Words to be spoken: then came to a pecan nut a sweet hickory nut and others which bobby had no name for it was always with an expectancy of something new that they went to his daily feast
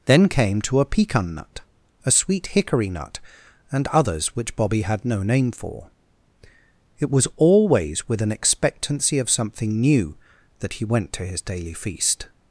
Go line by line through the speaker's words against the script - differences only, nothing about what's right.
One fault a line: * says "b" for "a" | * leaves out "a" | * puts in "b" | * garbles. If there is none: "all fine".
* says "he" for "they"